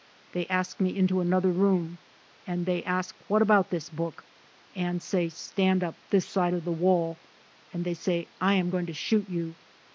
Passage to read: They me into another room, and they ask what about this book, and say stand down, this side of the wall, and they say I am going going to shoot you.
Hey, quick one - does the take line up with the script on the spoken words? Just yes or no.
no